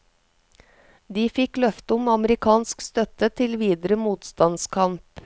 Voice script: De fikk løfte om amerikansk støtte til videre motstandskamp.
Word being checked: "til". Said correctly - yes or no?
yes